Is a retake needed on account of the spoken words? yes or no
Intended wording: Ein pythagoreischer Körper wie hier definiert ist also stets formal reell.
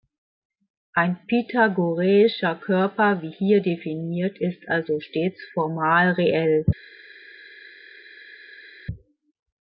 no